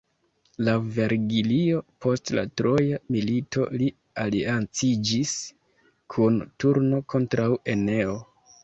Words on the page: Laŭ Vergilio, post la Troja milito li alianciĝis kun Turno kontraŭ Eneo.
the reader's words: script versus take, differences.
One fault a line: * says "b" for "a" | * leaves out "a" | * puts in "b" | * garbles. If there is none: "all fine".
all fine